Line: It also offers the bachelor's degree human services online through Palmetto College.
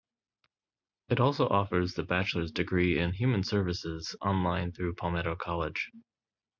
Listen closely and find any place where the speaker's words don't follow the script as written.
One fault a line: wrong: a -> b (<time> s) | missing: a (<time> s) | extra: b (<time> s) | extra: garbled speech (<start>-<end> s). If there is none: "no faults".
extra: in (3.0 s)